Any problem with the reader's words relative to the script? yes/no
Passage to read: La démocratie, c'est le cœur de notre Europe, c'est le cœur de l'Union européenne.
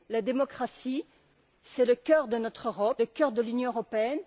yes